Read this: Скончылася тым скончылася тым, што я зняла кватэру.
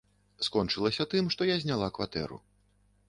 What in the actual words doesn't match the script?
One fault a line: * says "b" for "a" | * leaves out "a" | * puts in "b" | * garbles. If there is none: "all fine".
* leaves out "скончылася тым"